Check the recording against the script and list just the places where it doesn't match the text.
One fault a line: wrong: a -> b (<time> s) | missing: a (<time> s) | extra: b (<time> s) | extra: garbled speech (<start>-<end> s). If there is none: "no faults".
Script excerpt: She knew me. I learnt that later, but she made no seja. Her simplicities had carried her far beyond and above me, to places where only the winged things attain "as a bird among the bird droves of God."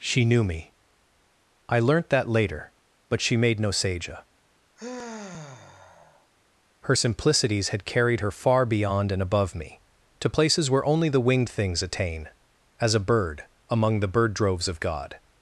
no faults